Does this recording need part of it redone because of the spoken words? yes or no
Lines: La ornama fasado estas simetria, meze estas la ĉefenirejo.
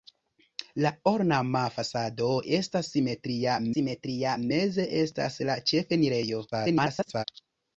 yes